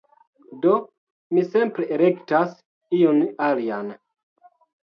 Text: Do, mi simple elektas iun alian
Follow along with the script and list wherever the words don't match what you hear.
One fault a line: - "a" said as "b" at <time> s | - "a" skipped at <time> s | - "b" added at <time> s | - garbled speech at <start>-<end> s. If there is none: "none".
none